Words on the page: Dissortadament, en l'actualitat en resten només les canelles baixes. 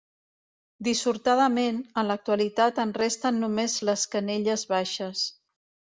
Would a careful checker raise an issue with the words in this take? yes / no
no